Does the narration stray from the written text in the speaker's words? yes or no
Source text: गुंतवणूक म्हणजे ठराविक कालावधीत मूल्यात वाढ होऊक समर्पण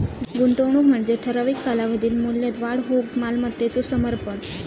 yes